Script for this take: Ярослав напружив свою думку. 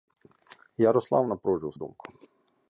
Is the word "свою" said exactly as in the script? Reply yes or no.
no